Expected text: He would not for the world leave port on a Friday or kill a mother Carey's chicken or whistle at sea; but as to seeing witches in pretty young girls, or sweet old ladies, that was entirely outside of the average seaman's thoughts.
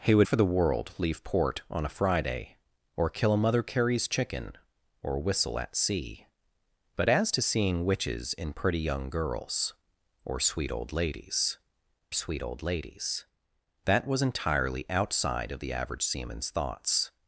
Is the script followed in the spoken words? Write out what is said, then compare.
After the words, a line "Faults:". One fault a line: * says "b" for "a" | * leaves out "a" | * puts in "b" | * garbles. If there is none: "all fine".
He would for the world leave port on a Friday or kill a mother Carey's chicken or whistle at sea; but as to seeing witches in pretty young girls, or sweet old ladies sweet old ladies, that was entirely outside of the average seaman's thoughts.
Faults:
* leaves out "not"
* puts in "sweet old ladies"